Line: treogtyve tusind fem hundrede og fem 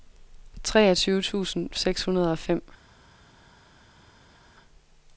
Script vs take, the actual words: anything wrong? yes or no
yes